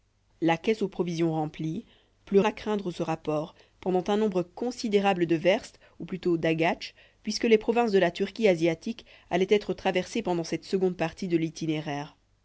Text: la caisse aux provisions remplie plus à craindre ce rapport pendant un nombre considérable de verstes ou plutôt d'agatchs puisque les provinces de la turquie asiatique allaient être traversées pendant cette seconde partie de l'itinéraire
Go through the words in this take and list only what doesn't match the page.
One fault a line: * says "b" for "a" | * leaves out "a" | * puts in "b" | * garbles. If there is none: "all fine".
all fine